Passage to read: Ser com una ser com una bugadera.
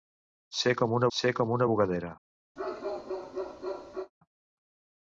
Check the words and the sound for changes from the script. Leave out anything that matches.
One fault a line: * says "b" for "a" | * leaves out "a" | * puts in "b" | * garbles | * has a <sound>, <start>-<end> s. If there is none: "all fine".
* has a bark, 2.6-4.1 s